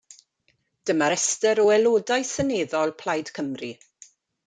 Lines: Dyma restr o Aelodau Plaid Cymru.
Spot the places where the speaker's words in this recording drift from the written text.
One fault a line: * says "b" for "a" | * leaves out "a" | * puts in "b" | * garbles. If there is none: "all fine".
* puts in "Seneddol"